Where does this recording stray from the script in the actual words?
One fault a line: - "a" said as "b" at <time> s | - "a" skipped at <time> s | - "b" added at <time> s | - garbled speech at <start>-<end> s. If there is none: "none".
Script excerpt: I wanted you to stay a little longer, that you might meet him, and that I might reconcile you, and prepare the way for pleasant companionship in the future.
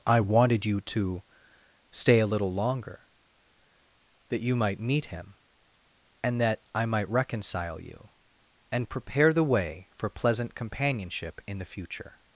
none